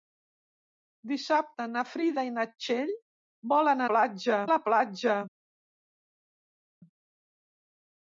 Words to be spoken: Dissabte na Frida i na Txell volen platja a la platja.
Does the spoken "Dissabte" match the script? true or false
true